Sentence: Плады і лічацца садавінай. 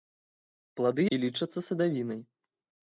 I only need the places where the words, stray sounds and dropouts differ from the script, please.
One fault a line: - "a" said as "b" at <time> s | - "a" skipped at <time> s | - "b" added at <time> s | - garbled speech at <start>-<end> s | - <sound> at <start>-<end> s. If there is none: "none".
none